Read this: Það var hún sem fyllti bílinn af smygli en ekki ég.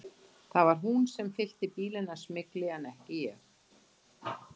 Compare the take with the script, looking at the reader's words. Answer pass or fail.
pass